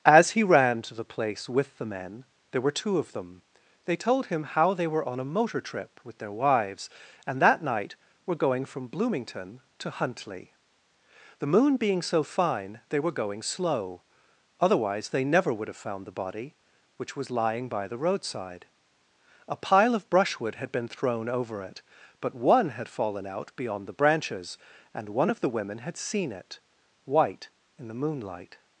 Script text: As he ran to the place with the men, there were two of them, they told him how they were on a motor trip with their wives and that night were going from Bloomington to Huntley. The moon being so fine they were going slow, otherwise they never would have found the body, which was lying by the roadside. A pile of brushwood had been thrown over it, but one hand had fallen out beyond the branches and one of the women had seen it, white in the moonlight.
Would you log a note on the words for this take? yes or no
yes